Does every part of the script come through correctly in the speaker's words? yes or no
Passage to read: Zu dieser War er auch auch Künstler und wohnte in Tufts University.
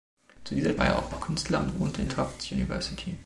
yes